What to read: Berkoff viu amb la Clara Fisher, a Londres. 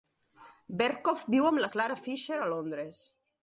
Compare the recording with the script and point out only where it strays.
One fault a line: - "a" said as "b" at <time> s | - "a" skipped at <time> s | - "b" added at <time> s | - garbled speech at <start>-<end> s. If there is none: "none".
none